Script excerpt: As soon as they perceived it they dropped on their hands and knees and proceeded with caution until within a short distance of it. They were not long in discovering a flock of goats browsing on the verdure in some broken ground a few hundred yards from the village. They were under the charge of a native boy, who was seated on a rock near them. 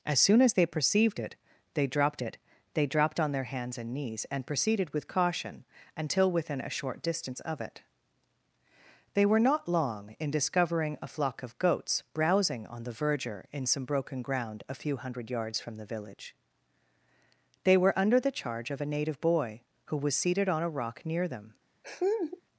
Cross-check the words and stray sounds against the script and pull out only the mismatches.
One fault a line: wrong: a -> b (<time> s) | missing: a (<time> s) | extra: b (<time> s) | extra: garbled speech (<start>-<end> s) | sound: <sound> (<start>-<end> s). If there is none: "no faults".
extra: it they dropped (2.2 s)
sound: laugh (21.8-22.4 s)